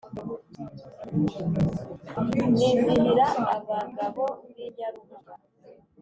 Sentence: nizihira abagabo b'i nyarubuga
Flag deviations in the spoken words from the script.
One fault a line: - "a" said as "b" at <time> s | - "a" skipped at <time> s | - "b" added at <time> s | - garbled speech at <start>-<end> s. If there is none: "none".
none